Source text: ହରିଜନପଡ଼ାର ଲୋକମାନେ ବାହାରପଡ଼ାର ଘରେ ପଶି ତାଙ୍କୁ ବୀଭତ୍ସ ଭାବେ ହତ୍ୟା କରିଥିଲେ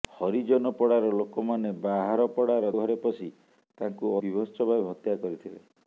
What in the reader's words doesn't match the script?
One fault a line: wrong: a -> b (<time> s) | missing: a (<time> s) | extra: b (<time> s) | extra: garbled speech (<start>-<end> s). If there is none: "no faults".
no faults